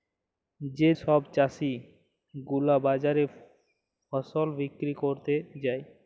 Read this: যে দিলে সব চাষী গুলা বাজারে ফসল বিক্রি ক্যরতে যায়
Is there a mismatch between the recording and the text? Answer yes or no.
yes